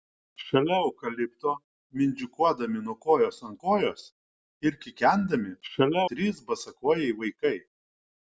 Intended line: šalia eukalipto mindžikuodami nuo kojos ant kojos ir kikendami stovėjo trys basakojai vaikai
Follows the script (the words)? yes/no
no